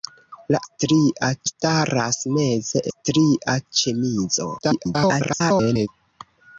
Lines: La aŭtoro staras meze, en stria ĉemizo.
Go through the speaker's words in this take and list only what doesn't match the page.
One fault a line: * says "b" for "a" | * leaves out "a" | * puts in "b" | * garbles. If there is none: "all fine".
* says "stria" for "aŭtoro"
* leaves out "en"
* garbles